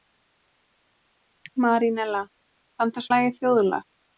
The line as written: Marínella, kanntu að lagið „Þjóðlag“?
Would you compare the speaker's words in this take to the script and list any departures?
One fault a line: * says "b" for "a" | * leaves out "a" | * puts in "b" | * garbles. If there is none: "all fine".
all fine